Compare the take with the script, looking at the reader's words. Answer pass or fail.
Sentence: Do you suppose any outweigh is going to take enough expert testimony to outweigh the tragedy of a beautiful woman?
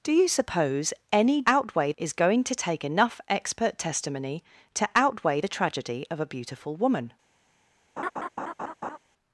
pass